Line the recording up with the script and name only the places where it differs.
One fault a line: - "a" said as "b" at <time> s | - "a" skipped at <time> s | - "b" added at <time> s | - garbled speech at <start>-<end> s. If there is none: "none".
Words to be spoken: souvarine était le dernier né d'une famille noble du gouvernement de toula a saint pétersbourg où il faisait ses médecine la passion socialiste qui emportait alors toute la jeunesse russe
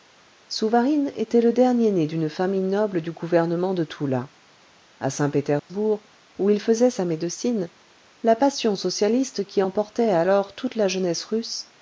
- "ses" said as "sa" at 6.9 s